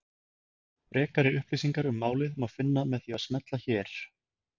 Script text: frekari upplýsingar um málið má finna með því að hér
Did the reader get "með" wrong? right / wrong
right